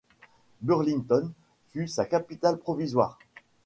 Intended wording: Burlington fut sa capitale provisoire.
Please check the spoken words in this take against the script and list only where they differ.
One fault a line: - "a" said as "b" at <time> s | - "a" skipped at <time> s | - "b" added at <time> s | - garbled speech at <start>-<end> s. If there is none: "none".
none